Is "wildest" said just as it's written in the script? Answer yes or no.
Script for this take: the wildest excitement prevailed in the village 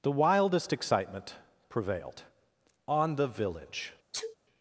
yes